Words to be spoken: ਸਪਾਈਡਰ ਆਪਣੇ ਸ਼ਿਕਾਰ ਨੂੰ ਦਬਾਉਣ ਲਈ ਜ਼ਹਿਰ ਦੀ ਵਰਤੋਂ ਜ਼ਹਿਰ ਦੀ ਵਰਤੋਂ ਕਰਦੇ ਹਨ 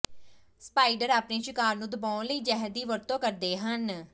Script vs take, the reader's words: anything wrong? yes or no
yes